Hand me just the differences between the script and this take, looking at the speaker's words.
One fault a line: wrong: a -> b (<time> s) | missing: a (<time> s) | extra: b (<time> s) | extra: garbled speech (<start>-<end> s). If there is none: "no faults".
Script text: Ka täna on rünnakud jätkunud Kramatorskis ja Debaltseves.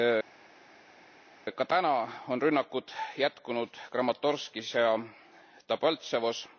no faults